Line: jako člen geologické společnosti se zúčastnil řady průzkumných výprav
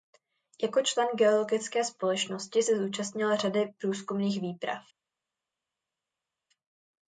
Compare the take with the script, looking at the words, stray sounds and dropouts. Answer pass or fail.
pass